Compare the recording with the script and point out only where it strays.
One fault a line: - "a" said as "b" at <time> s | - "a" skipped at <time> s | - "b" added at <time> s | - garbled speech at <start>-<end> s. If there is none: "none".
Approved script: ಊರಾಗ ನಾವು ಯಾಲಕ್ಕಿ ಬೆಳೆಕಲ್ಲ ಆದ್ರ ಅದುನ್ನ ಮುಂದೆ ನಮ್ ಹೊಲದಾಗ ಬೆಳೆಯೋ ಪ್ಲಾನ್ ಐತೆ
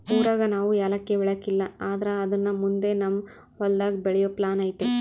none